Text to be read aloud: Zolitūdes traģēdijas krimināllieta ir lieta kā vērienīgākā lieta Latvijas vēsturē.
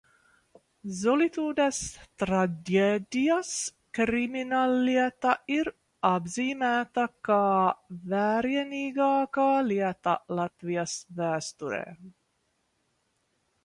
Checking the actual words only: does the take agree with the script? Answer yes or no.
no